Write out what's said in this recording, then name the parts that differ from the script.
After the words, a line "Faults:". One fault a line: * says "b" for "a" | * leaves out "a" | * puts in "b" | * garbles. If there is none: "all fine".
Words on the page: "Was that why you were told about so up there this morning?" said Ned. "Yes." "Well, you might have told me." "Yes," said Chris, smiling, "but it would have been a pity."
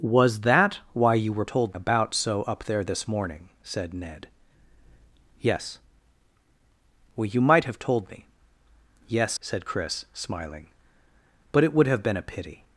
"Was that why you were told about so up there this morning?" said Ned. "Yes." "Well, you might have told me." "Yes," said Chris, smiling, "but it would have been a pity."
Faults:
all fine